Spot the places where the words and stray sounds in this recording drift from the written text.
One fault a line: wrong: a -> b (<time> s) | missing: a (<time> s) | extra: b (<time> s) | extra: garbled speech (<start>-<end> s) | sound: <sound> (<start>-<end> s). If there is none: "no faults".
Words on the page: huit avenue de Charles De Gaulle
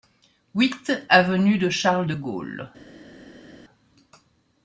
no faults